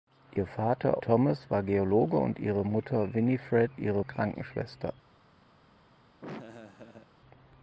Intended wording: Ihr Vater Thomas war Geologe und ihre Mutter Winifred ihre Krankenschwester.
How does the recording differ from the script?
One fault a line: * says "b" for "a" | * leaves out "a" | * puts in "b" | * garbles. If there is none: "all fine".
all fine